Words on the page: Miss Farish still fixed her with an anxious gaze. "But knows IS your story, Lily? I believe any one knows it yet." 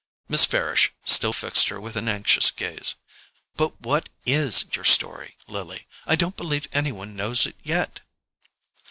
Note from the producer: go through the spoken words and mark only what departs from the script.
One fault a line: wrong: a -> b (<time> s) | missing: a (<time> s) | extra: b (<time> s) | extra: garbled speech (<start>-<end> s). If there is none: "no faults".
wrong: knows -> what (3.8 s)
extra: don't (6.1 s)